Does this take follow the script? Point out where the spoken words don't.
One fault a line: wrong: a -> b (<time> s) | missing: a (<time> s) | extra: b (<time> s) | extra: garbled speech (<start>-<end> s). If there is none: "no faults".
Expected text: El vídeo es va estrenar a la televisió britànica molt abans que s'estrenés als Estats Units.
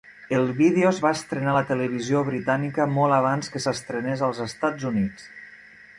no faults